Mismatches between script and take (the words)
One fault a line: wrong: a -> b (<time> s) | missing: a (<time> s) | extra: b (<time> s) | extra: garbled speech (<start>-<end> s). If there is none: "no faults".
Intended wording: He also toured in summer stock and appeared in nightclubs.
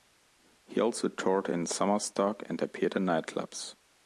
no faults